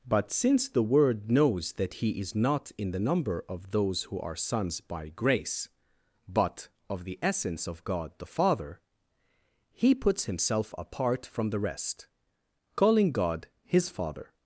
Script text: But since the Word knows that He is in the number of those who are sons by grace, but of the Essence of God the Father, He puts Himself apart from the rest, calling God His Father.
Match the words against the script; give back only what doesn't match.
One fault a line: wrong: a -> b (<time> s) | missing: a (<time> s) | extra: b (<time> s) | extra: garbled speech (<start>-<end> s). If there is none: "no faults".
extra: not (2.4 s)